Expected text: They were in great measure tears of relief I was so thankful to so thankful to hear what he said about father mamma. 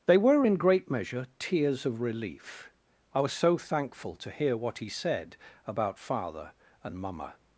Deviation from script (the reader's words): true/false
true